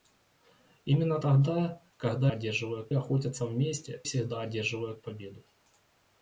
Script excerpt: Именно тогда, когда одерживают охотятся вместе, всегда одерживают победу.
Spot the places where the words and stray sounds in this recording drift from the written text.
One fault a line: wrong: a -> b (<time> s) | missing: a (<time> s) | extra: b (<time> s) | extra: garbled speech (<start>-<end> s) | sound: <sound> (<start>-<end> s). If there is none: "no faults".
no faults